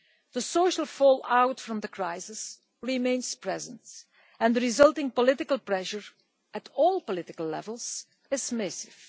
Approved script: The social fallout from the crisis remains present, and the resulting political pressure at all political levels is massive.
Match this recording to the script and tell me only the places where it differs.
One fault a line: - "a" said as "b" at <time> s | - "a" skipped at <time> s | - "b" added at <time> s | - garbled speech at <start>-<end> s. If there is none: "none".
none